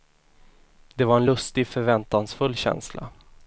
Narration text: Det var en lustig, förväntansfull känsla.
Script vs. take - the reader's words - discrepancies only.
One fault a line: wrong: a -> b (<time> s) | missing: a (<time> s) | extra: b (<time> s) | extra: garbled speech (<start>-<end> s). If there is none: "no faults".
no faults